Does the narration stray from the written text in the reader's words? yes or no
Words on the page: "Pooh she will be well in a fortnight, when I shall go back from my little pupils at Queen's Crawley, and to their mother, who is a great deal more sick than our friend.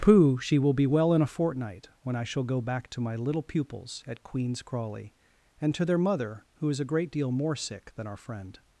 yes